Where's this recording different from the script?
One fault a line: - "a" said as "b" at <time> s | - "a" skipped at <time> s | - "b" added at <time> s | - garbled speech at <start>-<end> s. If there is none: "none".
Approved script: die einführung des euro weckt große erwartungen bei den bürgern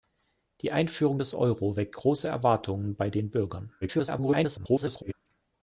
- garbled speech at 3.8-5.1 s